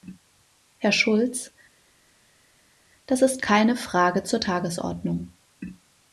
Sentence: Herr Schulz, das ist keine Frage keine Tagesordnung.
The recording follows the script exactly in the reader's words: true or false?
false